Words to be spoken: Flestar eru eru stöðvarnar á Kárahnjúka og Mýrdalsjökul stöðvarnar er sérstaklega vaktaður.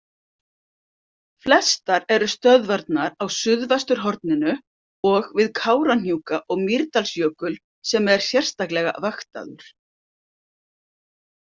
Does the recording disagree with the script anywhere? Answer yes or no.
yes